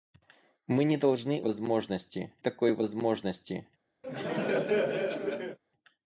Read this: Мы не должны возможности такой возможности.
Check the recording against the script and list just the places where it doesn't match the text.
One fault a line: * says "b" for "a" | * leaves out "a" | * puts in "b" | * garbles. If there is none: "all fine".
all fine